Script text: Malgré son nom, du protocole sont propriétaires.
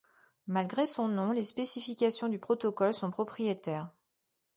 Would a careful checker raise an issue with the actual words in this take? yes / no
yes